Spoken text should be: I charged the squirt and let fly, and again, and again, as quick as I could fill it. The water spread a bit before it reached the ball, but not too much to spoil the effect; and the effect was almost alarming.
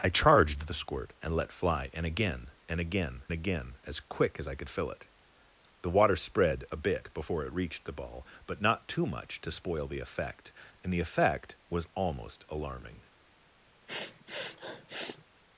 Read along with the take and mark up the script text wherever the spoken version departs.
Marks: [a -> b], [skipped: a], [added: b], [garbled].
I charged the squirt and let fly, and again, and again, [added: again] as quick as I could fill it. The water spread a bit before it reached the ball, but not too much to spoil the effect; and the effect was almost alarming.